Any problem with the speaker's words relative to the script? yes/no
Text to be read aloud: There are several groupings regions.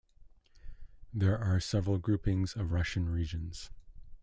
yes